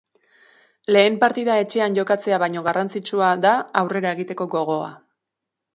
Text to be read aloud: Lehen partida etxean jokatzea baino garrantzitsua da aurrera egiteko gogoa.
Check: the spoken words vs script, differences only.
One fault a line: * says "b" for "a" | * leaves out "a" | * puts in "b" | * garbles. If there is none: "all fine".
all fine